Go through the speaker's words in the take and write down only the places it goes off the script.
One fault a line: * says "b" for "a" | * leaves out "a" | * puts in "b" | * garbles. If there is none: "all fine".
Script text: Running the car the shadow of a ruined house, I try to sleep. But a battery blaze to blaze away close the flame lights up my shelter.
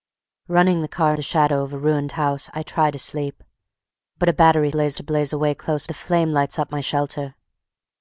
all fine